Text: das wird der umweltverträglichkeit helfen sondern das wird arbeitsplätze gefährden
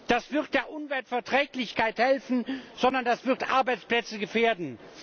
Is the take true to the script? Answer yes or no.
yes